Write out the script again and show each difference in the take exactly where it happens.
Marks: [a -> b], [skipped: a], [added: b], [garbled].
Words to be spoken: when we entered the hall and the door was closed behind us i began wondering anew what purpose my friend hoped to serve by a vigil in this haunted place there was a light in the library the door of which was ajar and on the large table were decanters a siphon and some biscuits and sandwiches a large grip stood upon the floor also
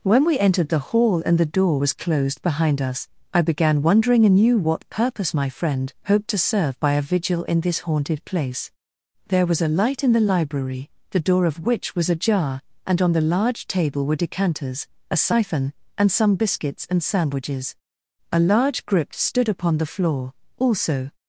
when we entered the hall and the door was closed behind us i began wondering anew what purpose my friend hoped to serve by a vigil in this haunted place there was a light in the library the door of which was ajar and on the large table were decanters a siphon and some biscuits and sandwiches a large grip stood upon the floor also